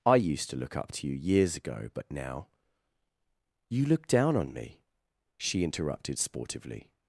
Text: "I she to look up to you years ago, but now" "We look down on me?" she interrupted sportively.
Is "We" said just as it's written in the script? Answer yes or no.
no